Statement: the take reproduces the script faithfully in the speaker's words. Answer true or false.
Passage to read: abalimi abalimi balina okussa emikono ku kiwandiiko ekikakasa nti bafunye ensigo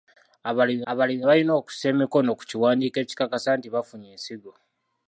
true